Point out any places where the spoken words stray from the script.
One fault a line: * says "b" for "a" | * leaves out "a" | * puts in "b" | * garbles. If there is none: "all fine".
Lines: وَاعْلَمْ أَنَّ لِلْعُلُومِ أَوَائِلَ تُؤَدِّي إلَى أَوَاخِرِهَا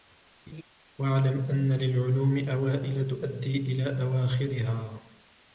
all fine